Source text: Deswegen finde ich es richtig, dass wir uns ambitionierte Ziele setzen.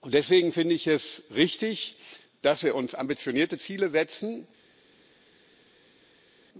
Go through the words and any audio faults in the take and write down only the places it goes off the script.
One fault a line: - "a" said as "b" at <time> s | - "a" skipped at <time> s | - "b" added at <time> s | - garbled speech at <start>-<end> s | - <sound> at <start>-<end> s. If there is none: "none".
none